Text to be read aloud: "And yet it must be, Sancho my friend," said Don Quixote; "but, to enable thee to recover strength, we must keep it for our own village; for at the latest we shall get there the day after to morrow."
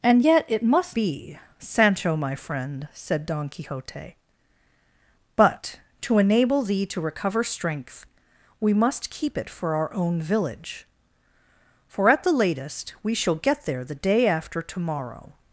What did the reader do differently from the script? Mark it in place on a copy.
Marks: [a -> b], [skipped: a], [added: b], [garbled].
"And yet it must be, Sancho my friend," said Don Quixote; "but, to enable thee to recover strength, we must keep it for our own village; for at the latest we shall get there the day after to morrow."